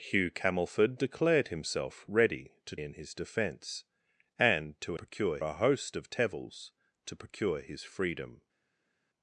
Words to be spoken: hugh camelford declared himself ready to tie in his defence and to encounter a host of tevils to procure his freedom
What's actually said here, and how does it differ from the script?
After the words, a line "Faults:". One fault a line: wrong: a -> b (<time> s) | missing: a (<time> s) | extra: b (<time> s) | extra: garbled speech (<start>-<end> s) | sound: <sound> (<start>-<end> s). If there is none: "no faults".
hugh camelford declared himself ready to in his defence and to procure a host of tevils to procure his freedom
Faults:
missing: tie (2.8 s)
wrong: encounter -> procure (4.9 s)